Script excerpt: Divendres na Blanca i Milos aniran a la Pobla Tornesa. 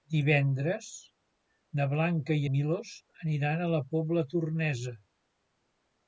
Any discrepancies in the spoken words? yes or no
no